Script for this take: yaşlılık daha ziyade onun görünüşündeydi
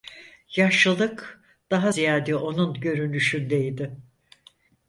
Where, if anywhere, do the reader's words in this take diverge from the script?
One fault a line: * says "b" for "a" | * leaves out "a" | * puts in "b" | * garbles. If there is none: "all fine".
all fine